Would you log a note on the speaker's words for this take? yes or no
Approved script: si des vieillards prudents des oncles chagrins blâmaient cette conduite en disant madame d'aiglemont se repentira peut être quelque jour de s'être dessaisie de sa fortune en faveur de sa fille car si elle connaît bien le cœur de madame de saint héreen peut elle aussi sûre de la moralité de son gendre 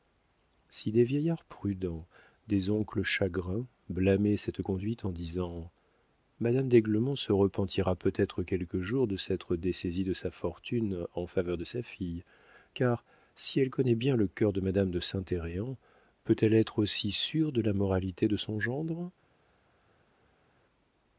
yes